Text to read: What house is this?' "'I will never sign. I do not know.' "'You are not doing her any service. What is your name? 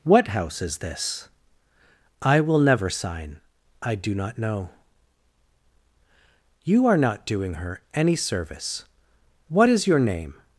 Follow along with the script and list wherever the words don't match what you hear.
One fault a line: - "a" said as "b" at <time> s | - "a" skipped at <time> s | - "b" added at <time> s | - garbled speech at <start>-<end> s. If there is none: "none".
none